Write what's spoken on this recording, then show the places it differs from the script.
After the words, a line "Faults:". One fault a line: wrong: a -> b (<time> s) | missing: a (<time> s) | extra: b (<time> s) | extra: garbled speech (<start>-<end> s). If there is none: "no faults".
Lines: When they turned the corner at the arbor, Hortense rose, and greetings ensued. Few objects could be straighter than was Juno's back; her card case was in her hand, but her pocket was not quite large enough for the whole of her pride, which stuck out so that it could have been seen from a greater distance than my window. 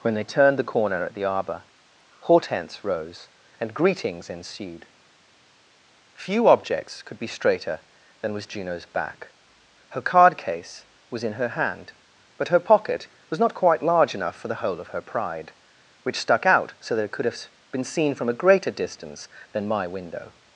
When they turned the corner at the arbor, Hortense rose, and greetings ensued. Few objects could be straighter than was Juno's back; her card case was in her hand, but her pocket was not quite large enough for the whole of her pride, which stuck out so that it could have been seen from a greater distance than my window.
Faults:
no faults